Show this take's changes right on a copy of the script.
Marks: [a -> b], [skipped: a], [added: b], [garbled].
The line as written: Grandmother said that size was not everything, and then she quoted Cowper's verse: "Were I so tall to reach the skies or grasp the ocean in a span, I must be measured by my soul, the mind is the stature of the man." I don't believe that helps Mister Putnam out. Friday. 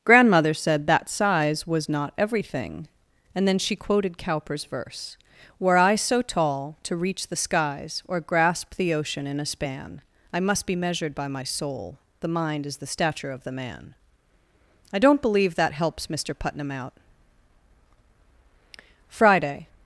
Grandmother said that size was not everything, and then she quoted Cowper's verse: "Were I so tall to reach the skies or grasp the ocean in a span, I must be measured by my soul, the mind is the stature of the man." I don't believe that helps Mister Putnam out. Friday.